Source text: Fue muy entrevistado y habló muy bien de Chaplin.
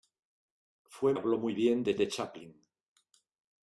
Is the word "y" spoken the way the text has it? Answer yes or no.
no